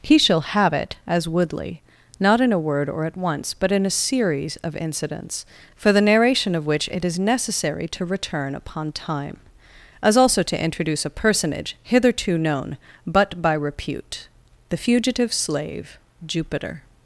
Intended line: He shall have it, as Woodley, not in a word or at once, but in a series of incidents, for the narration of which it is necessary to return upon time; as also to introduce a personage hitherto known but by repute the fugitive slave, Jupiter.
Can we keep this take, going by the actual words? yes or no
yes